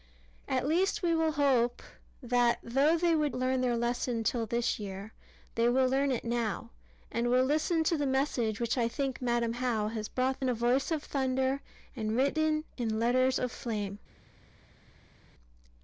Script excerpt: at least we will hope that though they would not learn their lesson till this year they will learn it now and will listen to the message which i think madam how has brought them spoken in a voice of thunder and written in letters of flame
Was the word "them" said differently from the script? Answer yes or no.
yes